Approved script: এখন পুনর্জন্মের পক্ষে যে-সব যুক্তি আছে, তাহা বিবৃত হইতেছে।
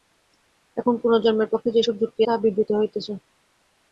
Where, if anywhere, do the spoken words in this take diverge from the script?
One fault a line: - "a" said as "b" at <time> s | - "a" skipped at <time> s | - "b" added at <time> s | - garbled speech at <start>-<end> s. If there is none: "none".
- "আছে" skipped at 2.2 s